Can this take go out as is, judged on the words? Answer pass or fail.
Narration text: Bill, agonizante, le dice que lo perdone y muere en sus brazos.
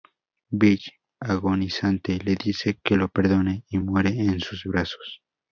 pass